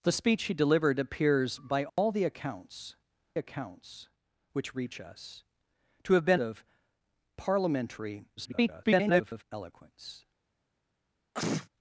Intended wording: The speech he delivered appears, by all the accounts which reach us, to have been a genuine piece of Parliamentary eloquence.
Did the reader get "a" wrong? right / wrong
wrong